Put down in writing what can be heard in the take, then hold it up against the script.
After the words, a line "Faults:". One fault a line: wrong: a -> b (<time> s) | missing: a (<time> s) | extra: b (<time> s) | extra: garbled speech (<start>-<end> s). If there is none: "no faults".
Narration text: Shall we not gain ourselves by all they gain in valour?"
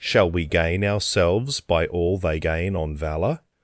Shall we gain ourselves by all they gain on valour?"
Faults:
missing: not (0.5 s)
wrong: in -> on (2.7 s)